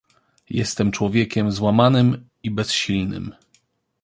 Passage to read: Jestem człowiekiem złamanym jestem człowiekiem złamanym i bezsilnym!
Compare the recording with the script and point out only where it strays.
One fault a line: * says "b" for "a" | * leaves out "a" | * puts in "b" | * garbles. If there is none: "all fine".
* leaves out "jestem człowiekiem złamanym"